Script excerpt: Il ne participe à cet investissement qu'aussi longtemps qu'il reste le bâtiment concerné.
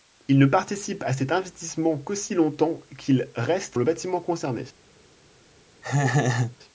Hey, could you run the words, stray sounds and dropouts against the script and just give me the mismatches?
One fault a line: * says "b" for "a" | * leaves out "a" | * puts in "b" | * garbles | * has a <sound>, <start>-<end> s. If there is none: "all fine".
* has a laugh, 5.8-6.6 s